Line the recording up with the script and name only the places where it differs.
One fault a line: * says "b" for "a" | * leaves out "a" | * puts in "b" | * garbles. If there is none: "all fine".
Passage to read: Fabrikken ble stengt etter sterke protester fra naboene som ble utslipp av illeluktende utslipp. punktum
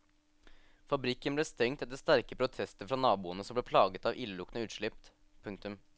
* says "plaget" for "utslipp"